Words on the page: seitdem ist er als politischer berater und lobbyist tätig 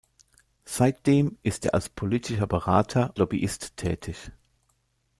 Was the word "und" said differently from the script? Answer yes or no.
yes